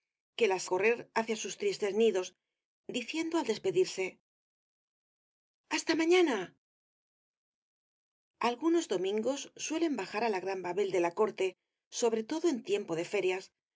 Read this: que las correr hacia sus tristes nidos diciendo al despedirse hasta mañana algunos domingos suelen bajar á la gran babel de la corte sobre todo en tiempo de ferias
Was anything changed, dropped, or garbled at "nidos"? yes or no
no